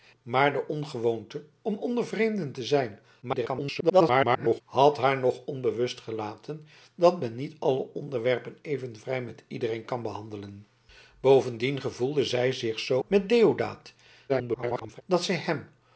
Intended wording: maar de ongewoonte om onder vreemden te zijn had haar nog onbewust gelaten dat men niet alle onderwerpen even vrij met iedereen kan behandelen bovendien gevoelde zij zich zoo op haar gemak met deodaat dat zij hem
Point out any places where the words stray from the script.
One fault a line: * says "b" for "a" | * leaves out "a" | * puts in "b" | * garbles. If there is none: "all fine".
* garbles
* leaves out "op haar gemak"
* garbles